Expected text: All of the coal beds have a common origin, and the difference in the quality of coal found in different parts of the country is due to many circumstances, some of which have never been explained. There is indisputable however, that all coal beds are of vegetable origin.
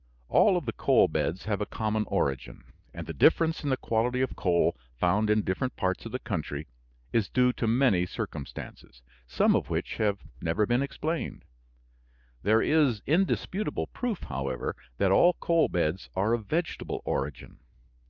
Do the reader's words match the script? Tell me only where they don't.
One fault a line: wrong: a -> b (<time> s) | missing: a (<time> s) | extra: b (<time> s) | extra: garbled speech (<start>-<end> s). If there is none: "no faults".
extra: proof (13.9 s)